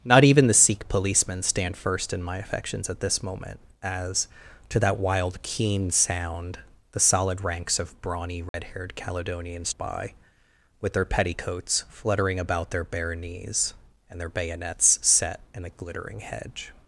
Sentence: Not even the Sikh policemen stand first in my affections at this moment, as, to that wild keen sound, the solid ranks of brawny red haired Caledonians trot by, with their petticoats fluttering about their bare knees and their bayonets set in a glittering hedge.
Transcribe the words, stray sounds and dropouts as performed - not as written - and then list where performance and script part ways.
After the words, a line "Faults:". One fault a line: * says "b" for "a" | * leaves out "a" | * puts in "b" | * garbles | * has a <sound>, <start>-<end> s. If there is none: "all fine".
Not even the Sikh policemen stand first in my affections at this moment, as, to that wild keen sound, the solid ranks of brawny red haired Caledonians by, with their petticoats fluttering about their bare knees and their bayonets set in a glittering hedge.
Faults:
* has a dropout, 8.5-8.5 s
* leaves out "trot"